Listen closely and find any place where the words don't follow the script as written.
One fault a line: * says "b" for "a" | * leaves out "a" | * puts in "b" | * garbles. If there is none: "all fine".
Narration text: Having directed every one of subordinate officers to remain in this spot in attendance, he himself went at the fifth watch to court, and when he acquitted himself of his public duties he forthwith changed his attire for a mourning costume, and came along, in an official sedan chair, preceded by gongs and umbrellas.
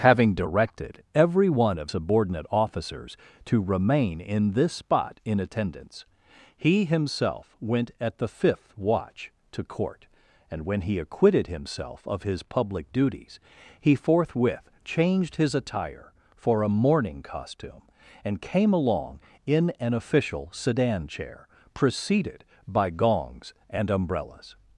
all fine